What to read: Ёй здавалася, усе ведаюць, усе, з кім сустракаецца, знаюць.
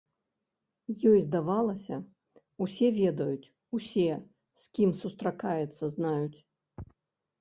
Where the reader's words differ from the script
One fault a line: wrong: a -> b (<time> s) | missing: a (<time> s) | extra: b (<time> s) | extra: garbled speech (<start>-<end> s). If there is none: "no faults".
no faults